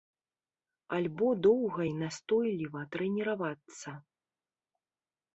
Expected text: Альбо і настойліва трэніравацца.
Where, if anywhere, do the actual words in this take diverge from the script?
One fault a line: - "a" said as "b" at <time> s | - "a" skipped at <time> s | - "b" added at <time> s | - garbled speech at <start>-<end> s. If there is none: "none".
- "доўга" added at 1.5 s